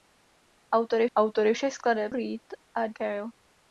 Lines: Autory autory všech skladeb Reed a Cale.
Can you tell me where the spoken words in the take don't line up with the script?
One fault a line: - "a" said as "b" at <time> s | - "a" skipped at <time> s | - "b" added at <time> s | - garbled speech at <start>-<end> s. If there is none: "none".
none